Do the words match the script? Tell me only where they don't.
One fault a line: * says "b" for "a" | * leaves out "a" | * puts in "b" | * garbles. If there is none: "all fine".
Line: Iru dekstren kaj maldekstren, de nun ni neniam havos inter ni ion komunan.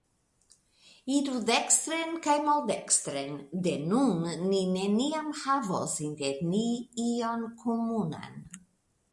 all fine